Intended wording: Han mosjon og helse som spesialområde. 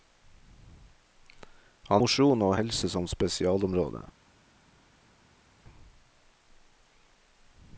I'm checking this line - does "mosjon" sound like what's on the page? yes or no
yes